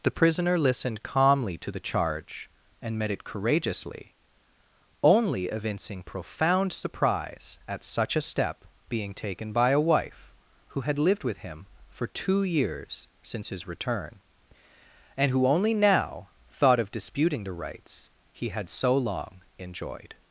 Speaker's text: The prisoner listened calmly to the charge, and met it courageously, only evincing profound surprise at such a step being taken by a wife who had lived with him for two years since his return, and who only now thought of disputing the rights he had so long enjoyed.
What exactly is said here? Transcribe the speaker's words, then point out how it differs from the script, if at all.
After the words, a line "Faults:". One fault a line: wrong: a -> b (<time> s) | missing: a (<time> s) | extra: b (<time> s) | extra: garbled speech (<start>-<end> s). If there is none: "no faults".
The prisoner listened calmly to the charge, and met it courageously, only evincing profound surprise at such a step being taken by a wife who had lived with him for two years since his return, and who only now thought of disputing the rights he had so long enjoyed.
Faults:
no faults